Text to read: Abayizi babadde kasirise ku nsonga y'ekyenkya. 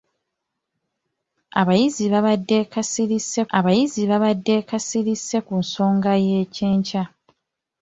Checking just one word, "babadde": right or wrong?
right